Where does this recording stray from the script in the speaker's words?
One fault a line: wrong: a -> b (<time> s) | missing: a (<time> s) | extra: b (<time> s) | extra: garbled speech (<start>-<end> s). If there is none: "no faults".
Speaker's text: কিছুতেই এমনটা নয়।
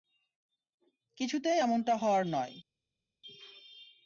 extra: হওয়ার (1.9 s)